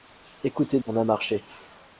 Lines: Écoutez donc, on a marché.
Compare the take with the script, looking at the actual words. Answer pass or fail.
fail